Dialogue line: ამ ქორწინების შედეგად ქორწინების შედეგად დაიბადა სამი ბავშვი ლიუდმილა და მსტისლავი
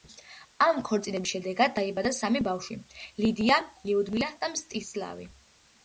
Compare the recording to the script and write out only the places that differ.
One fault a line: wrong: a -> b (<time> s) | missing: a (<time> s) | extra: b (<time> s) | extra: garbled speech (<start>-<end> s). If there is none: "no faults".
missing: ქორწინების შედეგად (1.8 s)
extra: ლიდია (3.2 s)